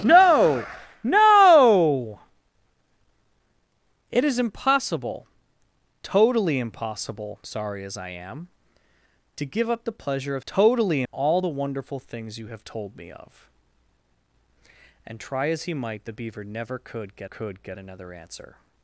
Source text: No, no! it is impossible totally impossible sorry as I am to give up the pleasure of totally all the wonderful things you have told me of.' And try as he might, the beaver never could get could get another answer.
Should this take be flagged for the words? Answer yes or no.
no